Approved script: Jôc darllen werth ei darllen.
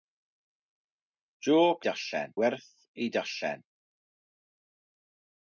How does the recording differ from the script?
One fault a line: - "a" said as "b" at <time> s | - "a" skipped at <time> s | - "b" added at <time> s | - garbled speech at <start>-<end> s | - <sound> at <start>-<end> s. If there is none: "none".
none